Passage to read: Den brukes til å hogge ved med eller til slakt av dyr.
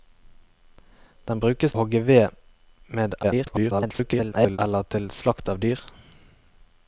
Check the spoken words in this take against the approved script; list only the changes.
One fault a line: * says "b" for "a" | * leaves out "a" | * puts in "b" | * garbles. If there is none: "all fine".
* leaves out "til"
* garbles